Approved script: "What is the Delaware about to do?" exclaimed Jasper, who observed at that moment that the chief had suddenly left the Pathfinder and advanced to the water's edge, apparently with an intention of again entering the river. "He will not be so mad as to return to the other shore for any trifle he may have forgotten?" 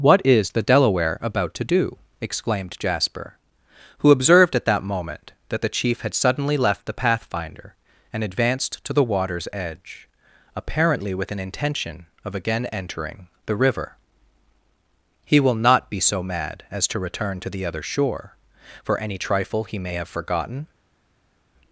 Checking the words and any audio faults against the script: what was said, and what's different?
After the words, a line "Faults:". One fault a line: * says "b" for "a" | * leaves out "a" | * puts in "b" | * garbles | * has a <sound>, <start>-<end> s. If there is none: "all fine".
"What is the Delaware about to do?" exclaimed Jasper, who observed at that moment that the chief had suddenly left the Pathfinder and advanced to the water's edge, apparently with an intention of again entering the river. "He will not be so mad as to return to the other shore for any trifle he may have forgotten?"
Faults:
all fine